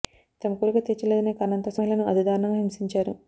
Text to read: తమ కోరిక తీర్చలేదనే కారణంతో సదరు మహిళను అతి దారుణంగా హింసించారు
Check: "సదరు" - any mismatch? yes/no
yes